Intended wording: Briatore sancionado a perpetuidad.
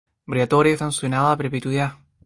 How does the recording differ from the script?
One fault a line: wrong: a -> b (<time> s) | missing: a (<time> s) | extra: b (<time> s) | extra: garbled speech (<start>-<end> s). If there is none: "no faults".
no faults